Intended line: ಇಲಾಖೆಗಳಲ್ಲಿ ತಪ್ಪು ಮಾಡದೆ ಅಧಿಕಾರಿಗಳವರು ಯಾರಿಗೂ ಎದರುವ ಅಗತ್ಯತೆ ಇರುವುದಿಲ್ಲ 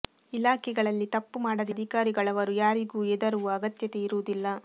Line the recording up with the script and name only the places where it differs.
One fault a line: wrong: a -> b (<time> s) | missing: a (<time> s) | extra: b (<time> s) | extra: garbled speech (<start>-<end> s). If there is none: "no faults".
no faults